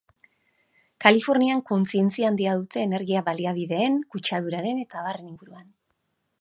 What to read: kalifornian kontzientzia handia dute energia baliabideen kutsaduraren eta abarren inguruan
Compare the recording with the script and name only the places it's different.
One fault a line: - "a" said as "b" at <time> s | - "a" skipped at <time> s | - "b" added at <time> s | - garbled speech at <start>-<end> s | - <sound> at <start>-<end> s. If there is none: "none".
none